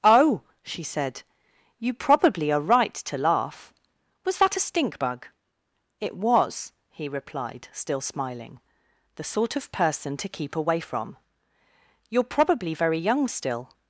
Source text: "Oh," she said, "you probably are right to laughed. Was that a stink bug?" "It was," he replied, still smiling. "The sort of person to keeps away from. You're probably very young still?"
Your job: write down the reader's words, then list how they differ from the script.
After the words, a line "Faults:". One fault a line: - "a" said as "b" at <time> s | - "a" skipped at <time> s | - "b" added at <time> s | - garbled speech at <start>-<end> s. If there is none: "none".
"Oh," she said, "you probably are right to laugh. Was that a stink bug?" "It was," he replied, still smiling. "The sort of person to keep away from. You're probably very young still?"
Faults:
- "laughed" said as "laugh" at 3.2 s
- "keeps" said as "keep" at 10.3 s